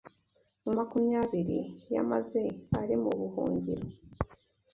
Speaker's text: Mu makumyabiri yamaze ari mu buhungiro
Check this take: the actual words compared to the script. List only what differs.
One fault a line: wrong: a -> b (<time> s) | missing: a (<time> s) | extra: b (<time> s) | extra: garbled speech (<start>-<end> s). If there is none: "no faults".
no faults